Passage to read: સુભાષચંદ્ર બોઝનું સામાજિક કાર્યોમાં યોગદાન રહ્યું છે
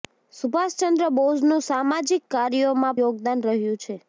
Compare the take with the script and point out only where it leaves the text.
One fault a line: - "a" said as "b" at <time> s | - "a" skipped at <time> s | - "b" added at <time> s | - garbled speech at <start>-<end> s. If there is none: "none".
none